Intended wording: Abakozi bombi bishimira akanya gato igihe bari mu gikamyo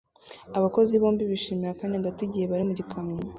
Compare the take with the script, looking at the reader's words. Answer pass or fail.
pass